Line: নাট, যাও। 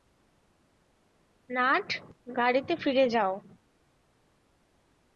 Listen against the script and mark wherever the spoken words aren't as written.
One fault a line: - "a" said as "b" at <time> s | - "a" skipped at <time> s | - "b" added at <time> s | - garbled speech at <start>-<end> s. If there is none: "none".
- "গাড়িতে ফিরে" added at 2.4 s